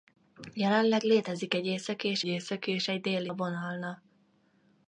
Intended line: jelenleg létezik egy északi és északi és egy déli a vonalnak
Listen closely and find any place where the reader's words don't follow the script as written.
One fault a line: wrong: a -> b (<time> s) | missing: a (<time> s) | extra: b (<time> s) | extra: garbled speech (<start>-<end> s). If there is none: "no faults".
no faults